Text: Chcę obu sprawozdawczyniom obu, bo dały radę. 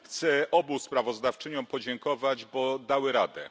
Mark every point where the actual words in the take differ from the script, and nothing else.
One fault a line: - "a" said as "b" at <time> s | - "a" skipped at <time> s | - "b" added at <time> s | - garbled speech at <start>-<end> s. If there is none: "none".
- "obu" said as "podziękować" at 1.7 s